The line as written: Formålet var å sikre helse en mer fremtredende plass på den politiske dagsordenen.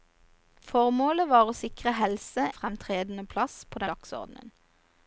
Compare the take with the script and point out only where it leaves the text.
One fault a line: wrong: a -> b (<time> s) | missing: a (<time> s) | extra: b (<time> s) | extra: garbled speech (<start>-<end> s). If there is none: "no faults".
missing: en mer (2.5 s)
missing: den politiske (3.8 s)